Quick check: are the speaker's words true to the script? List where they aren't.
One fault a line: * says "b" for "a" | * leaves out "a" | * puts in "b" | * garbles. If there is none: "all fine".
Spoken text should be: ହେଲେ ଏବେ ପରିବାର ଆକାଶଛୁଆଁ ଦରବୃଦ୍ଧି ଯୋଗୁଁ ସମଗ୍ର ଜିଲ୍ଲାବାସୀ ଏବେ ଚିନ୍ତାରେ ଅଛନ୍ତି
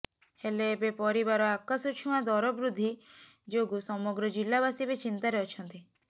all fine